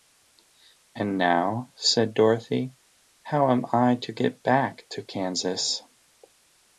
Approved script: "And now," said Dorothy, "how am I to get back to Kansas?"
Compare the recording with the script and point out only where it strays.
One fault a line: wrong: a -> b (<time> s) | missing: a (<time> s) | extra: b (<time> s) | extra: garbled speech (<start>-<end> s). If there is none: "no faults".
no faults